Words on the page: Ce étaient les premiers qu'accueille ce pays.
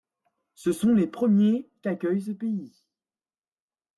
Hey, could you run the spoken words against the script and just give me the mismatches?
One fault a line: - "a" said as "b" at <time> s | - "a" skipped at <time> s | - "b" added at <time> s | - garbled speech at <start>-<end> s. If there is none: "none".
- "étaient" said as "sont" at 0.7 s